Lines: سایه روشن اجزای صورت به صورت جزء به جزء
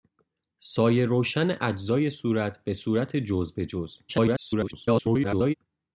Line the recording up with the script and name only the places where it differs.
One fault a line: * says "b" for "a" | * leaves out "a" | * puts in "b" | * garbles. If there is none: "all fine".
* garbles